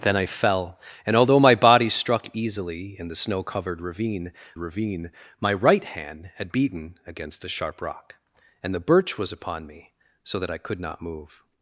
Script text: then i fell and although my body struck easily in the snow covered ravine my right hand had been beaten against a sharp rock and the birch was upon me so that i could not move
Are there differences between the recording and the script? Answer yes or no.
yes